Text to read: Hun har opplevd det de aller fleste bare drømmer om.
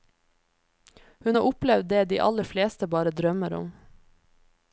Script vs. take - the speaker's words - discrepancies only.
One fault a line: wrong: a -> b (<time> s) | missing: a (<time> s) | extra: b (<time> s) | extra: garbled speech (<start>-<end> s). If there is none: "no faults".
no faults